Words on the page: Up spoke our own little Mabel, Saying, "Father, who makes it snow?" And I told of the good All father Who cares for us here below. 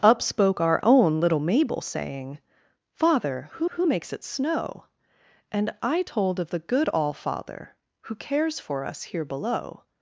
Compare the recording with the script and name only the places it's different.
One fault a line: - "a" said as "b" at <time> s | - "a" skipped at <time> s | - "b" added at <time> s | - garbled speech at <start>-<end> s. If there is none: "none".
- "who" added at 3.7 s